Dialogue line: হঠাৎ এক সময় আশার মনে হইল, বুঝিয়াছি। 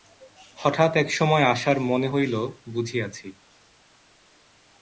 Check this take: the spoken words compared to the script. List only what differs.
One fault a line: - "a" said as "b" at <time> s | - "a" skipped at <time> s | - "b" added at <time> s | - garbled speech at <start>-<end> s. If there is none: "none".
none